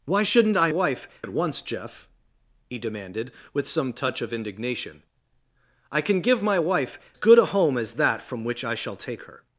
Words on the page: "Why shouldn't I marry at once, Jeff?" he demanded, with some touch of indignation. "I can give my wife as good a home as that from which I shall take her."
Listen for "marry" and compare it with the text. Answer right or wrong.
wrong